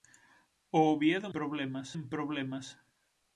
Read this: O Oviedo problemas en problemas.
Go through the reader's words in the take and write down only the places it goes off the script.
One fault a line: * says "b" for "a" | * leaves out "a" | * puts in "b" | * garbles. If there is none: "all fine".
all fine